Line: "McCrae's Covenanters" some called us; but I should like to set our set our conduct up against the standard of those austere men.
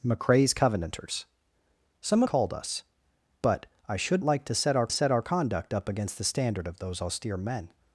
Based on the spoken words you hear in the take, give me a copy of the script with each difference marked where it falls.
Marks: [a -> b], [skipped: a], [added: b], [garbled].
"McCrae's Covenanters" some called us; but I should like to set our set our conduct up against the standard of those austere men.